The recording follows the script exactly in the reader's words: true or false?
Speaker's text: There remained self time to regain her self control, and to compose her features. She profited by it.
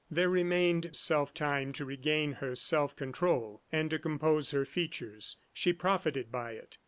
true